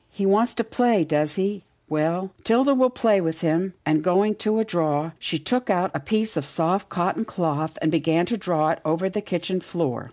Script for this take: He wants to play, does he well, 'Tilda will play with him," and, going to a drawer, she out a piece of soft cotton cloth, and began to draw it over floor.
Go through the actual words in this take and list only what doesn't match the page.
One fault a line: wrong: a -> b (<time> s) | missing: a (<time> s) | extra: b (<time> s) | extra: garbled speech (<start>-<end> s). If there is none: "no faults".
extra: took (5.4 s)
extra: the kitchen (9.1 s)